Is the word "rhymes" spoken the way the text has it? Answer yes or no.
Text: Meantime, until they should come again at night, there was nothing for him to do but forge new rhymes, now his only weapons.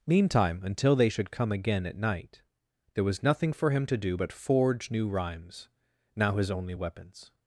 yes